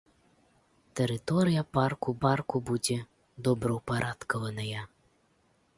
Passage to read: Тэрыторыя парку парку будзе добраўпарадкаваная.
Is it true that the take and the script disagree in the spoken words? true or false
false